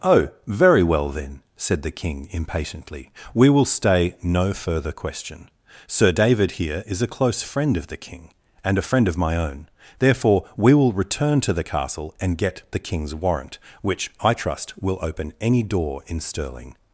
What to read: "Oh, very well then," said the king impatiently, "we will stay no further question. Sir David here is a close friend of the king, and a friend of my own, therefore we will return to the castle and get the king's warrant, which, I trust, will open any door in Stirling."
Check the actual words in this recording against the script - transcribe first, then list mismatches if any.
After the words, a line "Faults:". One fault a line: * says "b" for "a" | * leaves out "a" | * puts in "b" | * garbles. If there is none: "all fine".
"Oh, very well then," said the king impatiently, "we will stay no further question. Sir David here is a close friend of the king, and a friend of my own, therefore we will return to the castle and get the king's warrant, which, I trust, will open any door in Stirling."
Faults:
all fine